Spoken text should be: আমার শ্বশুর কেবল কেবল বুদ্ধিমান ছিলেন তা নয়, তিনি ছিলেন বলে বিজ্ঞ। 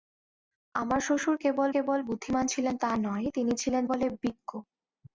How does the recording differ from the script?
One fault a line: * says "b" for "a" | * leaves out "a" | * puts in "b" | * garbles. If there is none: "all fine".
all fine